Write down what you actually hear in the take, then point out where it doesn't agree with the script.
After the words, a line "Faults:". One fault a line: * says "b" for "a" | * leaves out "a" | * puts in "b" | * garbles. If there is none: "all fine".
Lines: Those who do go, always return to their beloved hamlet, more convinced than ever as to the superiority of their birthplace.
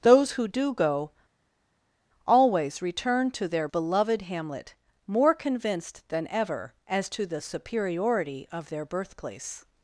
Those who do go, always return to their beloved hamlet, more convinced than ever as to the superiority of their birthplace.
Faults:
all fine